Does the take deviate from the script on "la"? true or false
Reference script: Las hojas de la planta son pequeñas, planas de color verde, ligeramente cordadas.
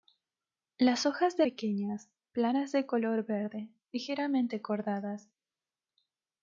true